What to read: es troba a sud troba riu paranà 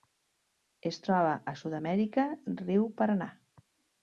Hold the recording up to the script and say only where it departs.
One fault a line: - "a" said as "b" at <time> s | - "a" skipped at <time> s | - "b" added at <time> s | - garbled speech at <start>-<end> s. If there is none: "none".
- "troba" said as "amèrica" at 1.8 s